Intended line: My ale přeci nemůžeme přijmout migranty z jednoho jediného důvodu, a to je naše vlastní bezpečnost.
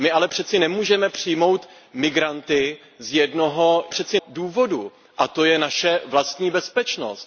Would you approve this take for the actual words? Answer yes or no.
no